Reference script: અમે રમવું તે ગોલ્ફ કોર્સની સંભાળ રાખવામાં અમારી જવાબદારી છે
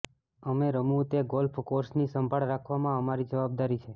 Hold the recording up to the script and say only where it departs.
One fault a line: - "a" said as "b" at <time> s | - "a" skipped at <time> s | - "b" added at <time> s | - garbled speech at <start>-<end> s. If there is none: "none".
none